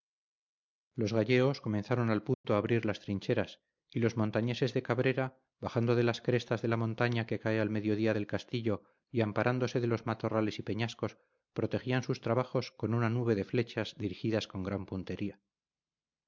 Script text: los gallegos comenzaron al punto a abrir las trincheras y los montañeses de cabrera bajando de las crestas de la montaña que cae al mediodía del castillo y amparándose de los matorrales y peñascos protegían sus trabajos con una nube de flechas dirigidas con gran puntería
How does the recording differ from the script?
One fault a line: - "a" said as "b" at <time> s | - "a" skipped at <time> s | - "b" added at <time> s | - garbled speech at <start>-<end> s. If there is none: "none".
none